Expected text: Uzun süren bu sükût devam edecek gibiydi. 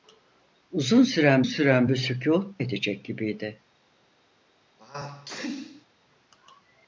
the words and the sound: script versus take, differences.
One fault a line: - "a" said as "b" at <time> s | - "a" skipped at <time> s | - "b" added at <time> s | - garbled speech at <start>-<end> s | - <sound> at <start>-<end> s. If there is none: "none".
- "süren" added at 1.4 s
- "devam" skipped at 2.6 s
- sneeze at 4.8-5.9 s